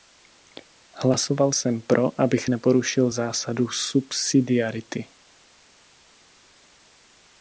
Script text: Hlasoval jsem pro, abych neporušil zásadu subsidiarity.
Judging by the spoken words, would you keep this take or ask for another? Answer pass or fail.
pass